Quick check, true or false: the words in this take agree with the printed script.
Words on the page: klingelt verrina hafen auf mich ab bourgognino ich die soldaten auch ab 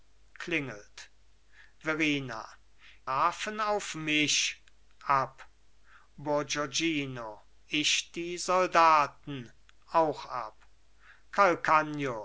true